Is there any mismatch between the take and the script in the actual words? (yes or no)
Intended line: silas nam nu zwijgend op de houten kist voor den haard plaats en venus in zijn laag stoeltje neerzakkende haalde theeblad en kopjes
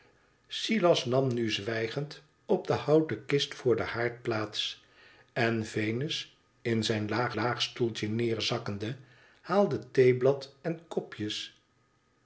yes